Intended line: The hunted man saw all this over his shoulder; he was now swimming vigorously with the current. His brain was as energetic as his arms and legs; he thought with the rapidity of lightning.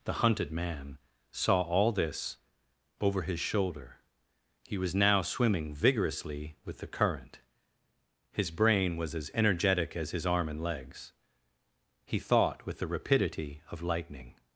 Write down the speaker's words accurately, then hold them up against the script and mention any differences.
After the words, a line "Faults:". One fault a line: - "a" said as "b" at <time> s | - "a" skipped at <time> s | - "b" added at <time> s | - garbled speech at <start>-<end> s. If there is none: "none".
The hunted man saw all this over his shoulder; he was now swimming vigorously with the current. His brain was as energetic as his arm and legs; he thought with the rapidity of lightning.
Faults:
- "arms" said as "arm" at 10.2 s